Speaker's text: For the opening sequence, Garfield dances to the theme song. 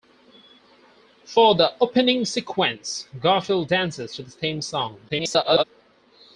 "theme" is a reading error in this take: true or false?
false